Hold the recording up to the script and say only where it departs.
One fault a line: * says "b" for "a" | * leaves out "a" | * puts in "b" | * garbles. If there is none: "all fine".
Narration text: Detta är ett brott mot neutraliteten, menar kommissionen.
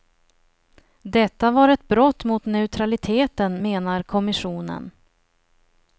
* says "var" for "är"